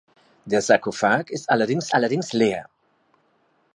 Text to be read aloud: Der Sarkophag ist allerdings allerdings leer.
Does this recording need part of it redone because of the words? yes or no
no